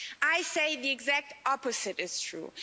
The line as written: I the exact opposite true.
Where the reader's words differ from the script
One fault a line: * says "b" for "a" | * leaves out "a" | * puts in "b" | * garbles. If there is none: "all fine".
* puts in "say"
* puts in "is"